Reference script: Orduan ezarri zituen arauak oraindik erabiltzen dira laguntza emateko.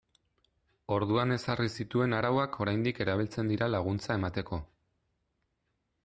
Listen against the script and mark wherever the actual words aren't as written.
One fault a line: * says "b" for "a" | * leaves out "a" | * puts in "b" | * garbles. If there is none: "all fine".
all fine